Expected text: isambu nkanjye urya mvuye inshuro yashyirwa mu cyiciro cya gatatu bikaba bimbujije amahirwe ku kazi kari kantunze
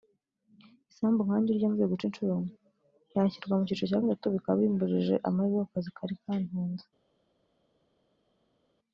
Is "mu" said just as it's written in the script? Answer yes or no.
yes